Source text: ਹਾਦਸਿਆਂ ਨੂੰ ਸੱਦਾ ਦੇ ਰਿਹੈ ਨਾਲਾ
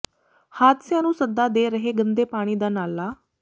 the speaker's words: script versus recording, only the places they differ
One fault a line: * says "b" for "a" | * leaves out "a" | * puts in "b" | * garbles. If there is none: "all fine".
* puts in "ਗੰਦੇ ਪਾਣੀ ਦਾ"